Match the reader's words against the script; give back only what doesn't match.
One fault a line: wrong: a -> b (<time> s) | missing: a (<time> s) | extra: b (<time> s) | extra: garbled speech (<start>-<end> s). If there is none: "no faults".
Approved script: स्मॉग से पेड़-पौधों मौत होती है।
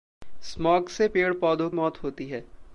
no faults